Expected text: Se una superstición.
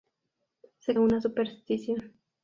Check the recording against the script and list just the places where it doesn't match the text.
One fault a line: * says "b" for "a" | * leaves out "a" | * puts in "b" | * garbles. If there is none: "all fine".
all fine